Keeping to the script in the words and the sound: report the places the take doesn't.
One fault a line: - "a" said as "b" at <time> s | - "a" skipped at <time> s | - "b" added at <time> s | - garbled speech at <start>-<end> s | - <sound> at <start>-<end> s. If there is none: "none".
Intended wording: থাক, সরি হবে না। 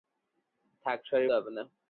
none